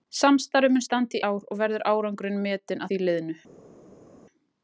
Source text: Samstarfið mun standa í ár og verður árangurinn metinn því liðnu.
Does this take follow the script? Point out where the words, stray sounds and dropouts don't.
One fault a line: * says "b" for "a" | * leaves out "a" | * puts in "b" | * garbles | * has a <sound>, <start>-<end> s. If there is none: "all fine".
all fine